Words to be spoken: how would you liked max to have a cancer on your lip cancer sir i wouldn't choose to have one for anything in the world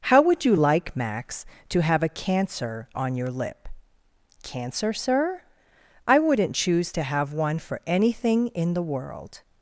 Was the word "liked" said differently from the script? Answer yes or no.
yes